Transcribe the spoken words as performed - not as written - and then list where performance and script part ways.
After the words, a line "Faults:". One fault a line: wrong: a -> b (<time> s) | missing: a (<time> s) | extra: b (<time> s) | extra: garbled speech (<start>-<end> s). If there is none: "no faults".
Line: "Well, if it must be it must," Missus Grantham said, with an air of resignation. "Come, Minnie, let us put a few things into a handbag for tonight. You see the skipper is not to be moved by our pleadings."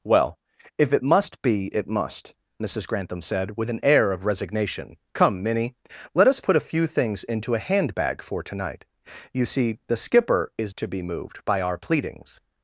"Well, if it must be it must," Missus Grantham said, with an air of resignation. "Come, Minnie, let us put a few things into a handbag for tonight. You see the skipper is to be moved by our pleadings."
Faults:
missing: not (10.7 s)